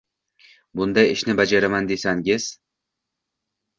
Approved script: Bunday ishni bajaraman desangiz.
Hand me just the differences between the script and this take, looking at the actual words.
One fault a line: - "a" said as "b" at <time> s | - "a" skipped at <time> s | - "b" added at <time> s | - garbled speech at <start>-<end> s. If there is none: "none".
none